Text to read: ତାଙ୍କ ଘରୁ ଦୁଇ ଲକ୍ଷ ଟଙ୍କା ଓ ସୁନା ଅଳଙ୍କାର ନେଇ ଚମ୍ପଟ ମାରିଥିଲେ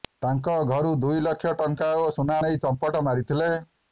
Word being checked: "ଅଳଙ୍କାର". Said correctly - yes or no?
no